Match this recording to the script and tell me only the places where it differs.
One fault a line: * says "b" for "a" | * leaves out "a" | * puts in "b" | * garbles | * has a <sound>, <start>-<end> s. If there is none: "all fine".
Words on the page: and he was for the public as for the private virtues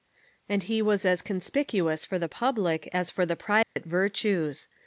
* puts in "as conspicuous"
* has a dropout, 3.6-3.8 s